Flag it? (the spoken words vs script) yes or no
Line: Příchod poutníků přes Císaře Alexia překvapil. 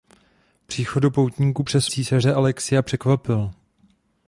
no